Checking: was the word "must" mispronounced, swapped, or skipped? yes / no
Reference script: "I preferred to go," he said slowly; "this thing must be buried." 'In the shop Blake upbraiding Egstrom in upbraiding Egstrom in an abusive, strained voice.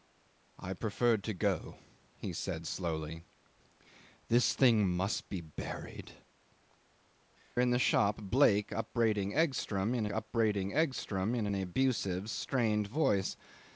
no